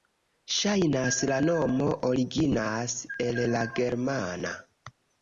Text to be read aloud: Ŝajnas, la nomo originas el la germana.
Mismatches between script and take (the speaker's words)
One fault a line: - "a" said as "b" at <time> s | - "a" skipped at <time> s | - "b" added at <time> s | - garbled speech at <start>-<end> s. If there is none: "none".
none